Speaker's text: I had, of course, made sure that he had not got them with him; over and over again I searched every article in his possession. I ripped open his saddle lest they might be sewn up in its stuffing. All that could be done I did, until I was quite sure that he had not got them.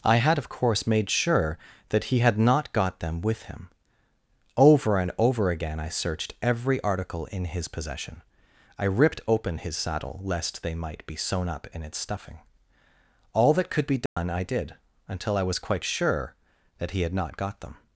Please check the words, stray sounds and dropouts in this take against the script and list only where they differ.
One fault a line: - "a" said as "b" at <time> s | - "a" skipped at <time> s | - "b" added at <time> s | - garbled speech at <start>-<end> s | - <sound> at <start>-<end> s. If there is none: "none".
- dropout at 14.1-14.2 s